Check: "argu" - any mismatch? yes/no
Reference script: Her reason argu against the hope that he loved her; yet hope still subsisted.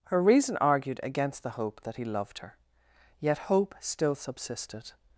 yes